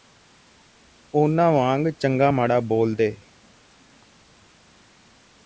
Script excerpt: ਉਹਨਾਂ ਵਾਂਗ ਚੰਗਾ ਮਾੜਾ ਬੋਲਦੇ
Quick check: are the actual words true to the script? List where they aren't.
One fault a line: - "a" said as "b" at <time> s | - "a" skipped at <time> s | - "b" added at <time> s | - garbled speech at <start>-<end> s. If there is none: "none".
none